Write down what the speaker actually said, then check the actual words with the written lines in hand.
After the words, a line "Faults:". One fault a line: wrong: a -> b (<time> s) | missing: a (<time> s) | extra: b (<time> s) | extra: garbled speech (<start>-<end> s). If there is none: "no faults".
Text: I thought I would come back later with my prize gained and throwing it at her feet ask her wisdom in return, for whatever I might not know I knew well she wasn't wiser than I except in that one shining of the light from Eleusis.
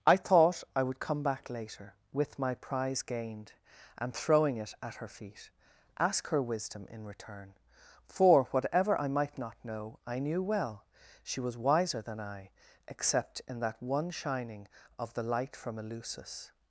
I thought I would come back later with my prize gained and throwing it at her feet ask her wisdom in return, for whatever I might not know I knew well she was wiser than I except in that one shining of the light from Eleusis.
Faults:
wrong: wasn't -> was (11.4 s)